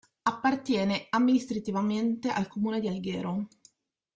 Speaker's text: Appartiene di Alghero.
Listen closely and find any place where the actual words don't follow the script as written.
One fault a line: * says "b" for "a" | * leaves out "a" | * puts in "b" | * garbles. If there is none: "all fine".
* puts in "amministrativamente al comune"